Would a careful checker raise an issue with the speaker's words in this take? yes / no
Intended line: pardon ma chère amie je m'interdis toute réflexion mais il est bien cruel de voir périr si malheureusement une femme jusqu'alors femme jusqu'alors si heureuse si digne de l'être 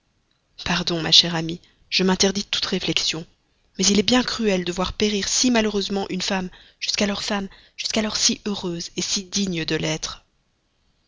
no